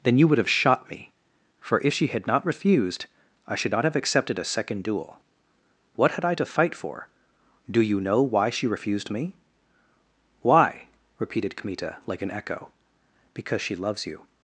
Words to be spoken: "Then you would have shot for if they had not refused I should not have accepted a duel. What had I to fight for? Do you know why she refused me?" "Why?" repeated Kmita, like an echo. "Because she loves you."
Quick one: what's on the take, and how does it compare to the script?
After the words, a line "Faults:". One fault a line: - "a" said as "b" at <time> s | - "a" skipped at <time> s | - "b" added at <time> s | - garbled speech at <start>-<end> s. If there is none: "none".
"Then you would have shot me, for if she had not refused I should not have accepted a second duel. What had I to fight for? Do you know why she refused me?" "Why?" repeated Kmita, like an echo. "Because she loves you."
Faults:
- "me" added at 0.9 s
- "they" said as "she" at 1.9 s
- "second" added at 4.4 s